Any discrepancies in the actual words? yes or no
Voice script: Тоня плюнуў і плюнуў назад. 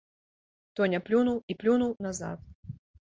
no